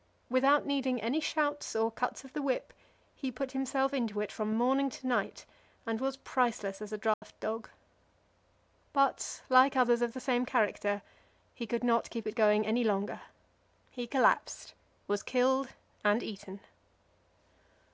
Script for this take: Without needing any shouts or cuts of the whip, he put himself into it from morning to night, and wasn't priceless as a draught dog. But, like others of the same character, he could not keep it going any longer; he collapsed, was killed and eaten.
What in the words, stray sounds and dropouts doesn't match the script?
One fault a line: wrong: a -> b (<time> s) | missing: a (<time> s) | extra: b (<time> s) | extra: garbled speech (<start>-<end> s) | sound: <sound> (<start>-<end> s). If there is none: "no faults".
wrong: wasn't -> was (6.0 s)
sound: dropout (7.1-7.2 s)